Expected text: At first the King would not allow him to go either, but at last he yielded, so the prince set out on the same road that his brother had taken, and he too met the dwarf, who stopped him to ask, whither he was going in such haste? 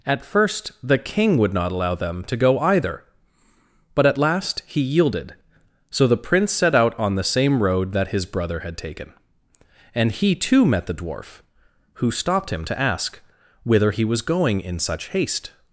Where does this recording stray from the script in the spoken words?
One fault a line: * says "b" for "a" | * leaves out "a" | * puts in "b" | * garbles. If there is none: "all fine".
* says "them" for "him"